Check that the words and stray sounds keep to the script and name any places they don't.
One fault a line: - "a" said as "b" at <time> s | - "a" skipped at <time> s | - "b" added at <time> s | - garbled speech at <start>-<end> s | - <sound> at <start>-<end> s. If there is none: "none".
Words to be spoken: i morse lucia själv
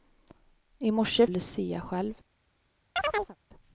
- chirp at 3.0-3.4 s